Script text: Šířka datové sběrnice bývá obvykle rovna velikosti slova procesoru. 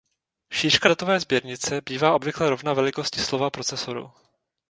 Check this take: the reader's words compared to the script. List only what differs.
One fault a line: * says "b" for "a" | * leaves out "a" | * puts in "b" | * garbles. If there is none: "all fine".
all fine